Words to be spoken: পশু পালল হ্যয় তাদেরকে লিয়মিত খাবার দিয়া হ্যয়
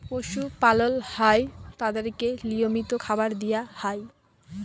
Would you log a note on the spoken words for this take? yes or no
no